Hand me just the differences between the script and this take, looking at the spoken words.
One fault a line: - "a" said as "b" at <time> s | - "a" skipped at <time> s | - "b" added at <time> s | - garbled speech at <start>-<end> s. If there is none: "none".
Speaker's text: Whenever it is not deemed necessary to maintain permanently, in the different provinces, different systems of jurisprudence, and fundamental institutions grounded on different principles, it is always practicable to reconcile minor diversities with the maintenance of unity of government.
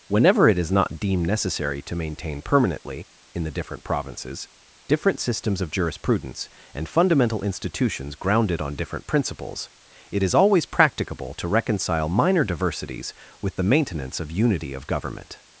none